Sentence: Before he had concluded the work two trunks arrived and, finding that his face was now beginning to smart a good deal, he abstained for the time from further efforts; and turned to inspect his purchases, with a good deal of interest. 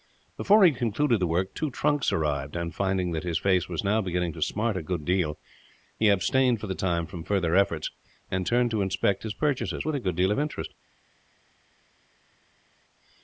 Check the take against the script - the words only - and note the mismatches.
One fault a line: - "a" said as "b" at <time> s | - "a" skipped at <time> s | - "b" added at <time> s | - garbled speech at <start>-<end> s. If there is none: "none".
none